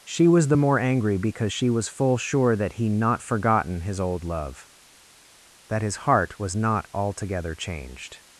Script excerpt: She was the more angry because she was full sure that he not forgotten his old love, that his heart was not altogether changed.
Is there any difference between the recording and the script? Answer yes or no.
no